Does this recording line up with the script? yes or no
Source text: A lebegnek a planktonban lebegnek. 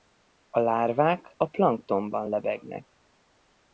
no